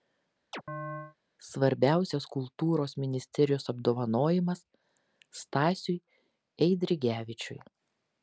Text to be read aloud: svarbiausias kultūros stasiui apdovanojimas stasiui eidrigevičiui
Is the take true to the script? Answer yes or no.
no